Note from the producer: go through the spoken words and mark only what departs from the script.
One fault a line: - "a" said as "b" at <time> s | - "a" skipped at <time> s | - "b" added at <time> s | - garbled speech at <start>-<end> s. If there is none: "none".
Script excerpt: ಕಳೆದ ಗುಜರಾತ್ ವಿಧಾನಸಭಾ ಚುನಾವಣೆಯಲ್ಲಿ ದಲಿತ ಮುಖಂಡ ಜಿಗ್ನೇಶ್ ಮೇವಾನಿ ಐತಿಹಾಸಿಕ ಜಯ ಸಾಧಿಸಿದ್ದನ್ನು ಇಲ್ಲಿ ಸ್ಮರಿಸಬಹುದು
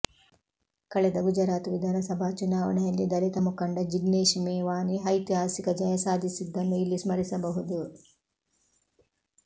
none